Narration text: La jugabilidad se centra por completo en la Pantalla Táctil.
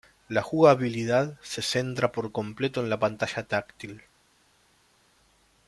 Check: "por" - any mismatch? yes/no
no